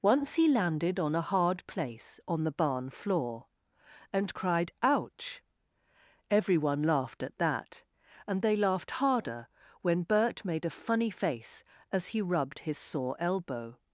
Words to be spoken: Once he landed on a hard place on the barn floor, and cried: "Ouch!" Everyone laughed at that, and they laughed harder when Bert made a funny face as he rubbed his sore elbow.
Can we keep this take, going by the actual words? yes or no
yes